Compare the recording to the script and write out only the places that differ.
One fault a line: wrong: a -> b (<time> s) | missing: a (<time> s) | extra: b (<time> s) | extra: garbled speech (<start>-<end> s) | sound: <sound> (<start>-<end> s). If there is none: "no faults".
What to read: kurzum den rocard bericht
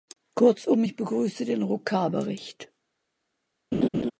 extra: ich begrüße (0.8 s)
sound: laugh (3.7-4.1 s)